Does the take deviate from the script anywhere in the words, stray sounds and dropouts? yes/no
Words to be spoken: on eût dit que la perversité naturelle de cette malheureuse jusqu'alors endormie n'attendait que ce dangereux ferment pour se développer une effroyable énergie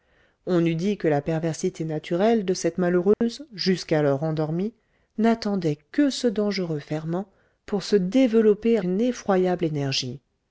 yes